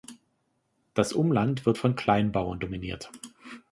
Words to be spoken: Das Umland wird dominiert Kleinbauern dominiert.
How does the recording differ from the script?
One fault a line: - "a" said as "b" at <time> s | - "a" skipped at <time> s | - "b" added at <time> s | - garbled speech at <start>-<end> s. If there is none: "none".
- "dominiert" said as "von" at 1.7 s